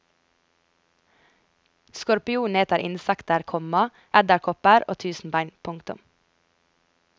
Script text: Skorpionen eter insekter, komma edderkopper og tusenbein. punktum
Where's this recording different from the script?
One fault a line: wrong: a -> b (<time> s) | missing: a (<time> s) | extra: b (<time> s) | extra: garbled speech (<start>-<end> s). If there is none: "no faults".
no faults